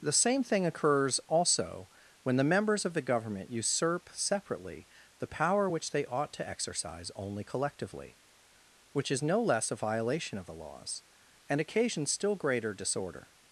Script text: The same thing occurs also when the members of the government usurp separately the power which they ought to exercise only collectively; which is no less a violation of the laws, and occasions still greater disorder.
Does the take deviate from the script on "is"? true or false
false